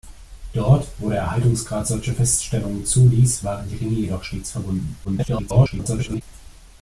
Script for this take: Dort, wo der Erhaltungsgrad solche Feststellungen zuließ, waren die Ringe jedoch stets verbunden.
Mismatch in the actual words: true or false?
true